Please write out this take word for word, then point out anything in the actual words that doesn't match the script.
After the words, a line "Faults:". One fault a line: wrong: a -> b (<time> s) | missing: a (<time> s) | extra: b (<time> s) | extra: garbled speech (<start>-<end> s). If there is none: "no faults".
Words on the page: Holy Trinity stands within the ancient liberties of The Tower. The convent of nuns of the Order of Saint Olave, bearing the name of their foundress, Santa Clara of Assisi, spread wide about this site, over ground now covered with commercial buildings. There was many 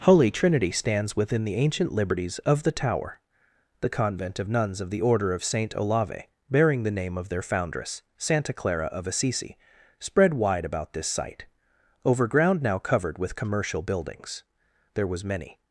Holy Trinity stands within the ancient liberties of The Tower. The convent of nuns of the Order of Saint Olave, bearing the name of their foundress, Santa Clara of Assisi, spread wide about this site, over ground now covered with commercial buildings. There was many
Faults:
no faults